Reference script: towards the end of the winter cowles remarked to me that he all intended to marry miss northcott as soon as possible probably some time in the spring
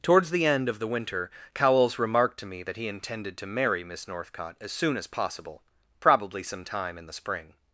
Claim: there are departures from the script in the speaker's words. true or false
true